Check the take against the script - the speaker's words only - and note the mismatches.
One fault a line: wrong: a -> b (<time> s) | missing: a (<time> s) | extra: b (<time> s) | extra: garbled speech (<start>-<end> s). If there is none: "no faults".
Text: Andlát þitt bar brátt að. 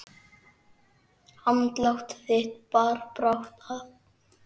no faults